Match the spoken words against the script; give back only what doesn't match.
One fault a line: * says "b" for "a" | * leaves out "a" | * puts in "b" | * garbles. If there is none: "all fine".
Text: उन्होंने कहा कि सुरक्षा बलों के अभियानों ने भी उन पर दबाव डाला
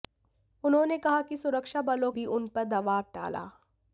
* leaves out "के अभियानों ने"